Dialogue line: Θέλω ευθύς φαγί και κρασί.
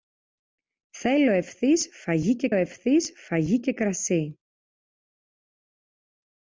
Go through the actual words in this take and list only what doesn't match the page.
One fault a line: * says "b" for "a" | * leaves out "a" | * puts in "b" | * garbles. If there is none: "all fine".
* puts in "ευθύς φαγί και"